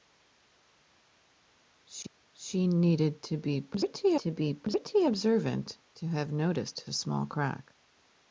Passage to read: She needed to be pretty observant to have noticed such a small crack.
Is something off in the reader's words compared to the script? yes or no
yes